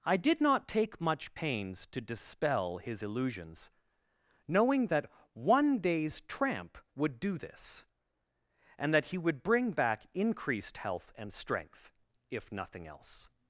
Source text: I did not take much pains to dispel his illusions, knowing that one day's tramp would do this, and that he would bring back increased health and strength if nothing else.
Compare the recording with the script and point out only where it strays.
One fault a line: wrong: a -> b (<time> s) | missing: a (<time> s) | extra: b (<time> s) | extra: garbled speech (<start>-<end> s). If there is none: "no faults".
no faults